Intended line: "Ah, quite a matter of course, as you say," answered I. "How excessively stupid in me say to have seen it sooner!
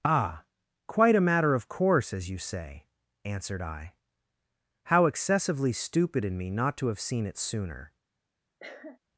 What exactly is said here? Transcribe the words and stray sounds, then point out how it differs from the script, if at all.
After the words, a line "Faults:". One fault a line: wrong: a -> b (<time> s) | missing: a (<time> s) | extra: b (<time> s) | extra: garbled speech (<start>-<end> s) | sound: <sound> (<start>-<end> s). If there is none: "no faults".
"Ah, quite a matter of course, as you say," answered I. "How excessively stupid in me not to have seen it sooner!
Faults:
wrong: say -> not (6.5 s)
sound: cough (8.6-9.0 s)